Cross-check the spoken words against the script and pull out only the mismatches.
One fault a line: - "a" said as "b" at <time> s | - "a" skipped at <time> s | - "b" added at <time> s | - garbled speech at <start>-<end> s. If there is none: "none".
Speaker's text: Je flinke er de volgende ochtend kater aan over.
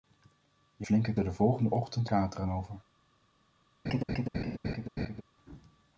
none